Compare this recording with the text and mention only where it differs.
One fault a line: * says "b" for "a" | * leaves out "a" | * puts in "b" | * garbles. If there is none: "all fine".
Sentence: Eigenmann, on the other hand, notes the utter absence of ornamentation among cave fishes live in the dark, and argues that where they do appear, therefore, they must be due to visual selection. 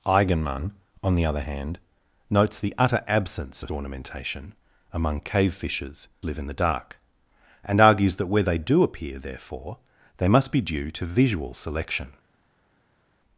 all fine